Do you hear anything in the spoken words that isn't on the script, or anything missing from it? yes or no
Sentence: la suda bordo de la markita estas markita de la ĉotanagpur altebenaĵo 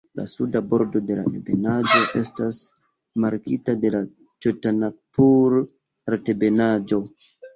yes